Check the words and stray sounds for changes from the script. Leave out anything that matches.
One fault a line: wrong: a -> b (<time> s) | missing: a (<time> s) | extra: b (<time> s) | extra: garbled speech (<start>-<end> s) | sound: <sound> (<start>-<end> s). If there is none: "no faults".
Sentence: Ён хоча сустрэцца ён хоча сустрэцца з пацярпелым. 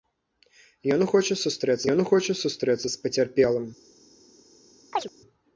sound: chirp (4.9-5.1 s)